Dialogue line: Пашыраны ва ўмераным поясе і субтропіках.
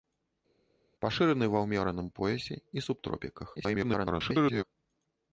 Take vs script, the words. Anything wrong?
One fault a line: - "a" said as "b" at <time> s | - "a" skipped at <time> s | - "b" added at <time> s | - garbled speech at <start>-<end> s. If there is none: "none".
- garbled speech at 3.6-4.6 s